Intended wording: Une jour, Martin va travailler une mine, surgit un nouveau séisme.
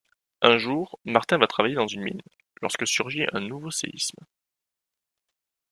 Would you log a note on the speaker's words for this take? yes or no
yes